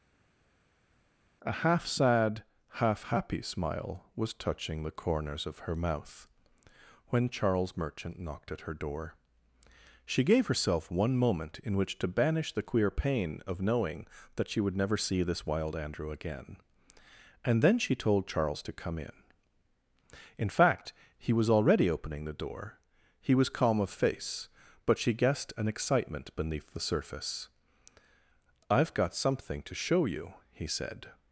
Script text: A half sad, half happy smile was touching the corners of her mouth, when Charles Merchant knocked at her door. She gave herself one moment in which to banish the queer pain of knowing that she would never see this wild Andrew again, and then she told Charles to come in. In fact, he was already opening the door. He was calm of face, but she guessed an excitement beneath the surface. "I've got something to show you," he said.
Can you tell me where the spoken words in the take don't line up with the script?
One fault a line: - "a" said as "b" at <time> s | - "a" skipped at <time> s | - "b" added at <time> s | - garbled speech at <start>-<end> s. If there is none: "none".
none